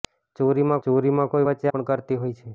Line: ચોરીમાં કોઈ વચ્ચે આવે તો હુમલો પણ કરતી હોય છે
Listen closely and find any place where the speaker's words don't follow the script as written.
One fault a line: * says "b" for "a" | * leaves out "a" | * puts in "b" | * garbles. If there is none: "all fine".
* puts in "ચોરીમાં"
* leaves out "આવે તો હુમલો"